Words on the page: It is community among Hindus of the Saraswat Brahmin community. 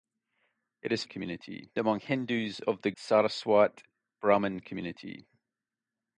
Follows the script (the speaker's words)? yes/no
yes